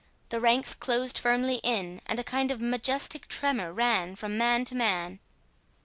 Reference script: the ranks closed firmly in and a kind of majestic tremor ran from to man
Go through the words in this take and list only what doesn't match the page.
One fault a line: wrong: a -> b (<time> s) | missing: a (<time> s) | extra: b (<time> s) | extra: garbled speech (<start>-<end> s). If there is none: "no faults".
extra: man (4.4 s)